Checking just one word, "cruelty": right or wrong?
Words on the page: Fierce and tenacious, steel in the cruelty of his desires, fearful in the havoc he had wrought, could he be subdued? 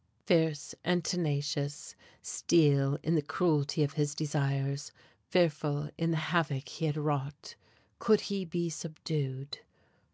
right